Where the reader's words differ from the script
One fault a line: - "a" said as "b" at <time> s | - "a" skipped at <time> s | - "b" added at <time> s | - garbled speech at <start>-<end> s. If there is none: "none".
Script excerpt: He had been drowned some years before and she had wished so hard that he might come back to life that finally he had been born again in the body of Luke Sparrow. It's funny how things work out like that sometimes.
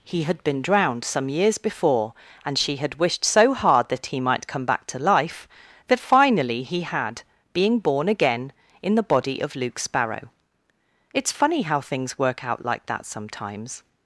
- "been" said as "being" at 7.5 s